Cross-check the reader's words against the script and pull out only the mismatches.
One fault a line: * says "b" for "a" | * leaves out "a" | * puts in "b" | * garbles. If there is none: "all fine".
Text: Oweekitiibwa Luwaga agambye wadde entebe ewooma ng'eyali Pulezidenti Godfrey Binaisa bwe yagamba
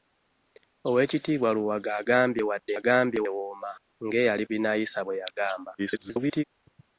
* says "agambye" for "entebe"
* leaves out "Pulezidenti Godfrey"
* garbles